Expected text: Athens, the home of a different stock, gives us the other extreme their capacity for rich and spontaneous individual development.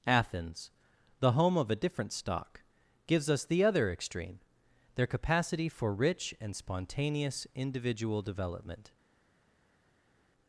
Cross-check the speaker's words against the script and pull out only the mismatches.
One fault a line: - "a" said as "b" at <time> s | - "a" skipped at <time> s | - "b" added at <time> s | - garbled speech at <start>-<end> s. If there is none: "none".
none